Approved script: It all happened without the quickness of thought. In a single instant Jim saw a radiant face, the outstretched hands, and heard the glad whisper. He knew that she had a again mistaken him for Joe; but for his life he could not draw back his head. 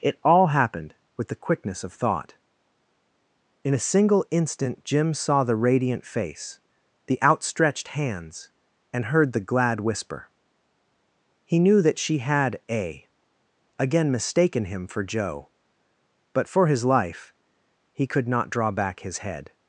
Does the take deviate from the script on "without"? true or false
true